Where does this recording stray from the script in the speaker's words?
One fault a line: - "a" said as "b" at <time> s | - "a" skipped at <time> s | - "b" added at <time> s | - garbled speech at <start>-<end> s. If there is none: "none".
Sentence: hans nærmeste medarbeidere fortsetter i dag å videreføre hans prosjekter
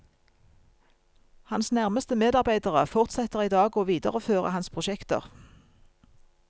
none